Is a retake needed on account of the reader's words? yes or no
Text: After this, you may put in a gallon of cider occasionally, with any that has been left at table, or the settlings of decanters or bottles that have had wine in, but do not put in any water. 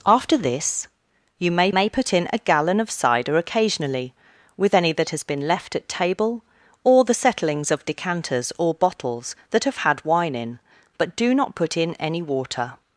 yes